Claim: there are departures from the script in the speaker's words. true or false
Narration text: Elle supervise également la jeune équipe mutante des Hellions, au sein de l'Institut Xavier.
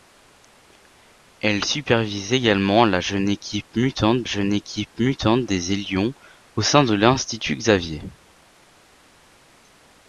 true